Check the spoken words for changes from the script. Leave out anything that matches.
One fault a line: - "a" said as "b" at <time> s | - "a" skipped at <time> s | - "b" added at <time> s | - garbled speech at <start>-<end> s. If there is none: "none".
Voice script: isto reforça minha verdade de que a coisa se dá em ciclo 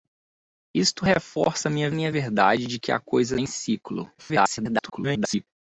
- "minha" added at 1.9 s
- "se dá" skipped at 3.4 s
- garbled speech at 4.2-5.5 s